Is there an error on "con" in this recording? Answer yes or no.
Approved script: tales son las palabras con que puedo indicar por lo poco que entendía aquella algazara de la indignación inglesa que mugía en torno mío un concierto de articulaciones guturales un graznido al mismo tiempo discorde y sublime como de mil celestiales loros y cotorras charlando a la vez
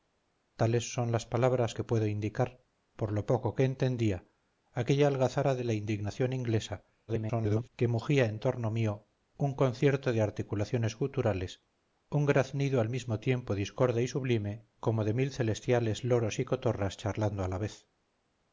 yes